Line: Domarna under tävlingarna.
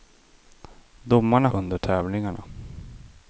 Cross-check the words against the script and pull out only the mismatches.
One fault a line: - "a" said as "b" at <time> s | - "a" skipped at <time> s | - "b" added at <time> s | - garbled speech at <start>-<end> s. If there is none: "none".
none